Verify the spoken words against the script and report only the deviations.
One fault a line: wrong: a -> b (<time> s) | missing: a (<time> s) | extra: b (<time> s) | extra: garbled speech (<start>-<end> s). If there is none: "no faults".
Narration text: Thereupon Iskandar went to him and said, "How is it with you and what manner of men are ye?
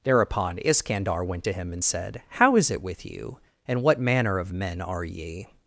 no faults